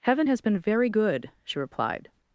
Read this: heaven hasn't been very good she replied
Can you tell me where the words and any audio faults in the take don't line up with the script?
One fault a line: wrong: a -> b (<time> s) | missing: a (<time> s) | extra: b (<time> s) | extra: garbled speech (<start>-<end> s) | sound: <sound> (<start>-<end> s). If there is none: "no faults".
wrong: hasn't -> has (0.3 s)